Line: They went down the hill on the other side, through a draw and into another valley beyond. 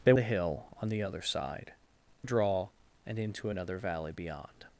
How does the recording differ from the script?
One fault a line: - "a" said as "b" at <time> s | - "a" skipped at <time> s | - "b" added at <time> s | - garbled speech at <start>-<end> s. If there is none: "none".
- "went down" skipped at 0.1 s
- "through" skipped at 1.7 s